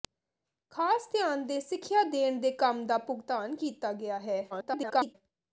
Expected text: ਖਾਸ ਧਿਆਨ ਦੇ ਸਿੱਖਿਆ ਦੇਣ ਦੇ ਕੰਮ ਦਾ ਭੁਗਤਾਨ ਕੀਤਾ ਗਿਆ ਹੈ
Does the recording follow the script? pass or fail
fail